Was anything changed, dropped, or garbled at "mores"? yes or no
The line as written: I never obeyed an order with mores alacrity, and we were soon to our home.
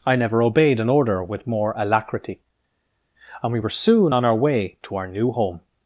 yes